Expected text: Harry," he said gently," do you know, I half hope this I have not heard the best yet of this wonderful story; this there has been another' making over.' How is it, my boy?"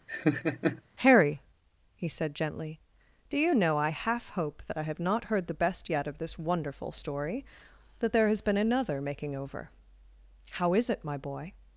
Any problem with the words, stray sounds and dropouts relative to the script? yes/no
yes